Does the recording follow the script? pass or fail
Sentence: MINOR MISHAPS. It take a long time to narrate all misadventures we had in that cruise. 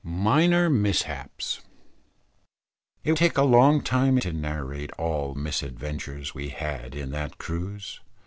pass